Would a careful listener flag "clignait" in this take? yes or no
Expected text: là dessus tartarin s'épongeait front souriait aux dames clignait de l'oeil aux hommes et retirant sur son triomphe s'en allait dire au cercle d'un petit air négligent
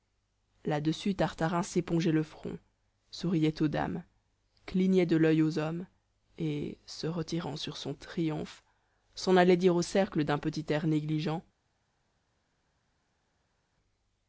no